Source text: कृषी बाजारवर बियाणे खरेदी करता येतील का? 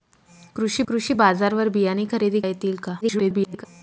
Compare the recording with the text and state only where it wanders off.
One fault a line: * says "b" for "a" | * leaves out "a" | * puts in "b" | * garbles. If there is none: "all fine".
* puts in "कृषी"
* leaves out "करता"
* garbles